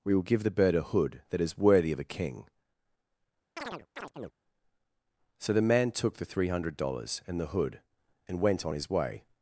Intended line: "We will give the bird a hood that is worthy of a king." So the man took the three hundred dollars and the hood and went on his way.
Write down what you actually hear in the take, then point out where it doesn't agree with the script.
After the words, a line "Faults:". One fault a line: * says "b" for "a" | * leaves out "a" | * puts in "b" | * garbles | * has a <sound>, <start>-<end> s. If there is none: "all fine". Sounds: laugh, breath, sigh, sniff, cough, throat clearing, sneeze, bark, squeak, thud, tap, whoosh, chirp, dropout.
"We will give the bird a hood that is worthy of a king." So the man took the three hundred dollars and the hood and went on his way.
Faults:
* has a chirp, 3.6-4.3 s